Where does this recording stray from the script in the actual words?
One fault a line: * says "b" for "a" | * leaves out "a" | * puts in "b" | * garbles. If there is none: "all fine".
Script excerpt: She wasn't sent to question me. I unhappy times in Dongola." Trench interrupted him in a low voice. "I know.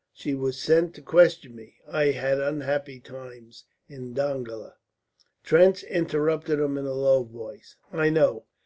* says "was" for "wasn't"
* puts in "had"